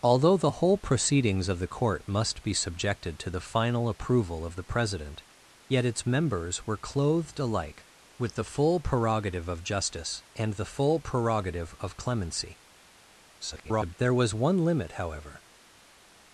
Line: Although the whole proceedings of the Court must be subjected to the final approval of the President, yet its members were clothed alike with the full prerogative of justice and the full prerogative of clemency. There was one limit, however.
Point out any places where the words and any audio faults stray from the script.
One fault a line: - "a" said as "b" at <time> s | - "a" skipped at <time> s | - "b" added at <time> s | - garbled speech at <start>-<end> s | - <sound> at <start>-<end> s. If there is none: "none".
- garbled speech at 13.4-14.0 s